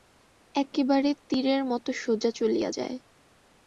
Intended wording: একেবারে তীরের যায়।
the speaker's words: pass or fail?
fail